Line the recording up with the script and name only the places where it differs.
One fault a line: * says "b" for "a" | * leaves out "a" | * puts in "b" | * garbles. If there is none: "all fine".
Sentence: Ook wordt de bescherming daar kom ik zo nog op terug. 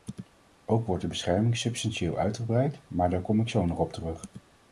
* puts in "substantieel uitgebreid maar"